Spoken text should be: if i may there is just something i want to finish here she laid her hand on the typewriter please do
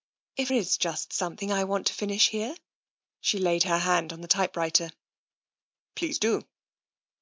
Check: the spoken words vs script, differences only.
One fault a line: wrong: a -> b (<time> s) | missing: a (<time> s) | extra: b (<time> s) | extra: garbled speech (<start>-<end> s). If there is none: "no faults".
missing: i may there (0.5 s)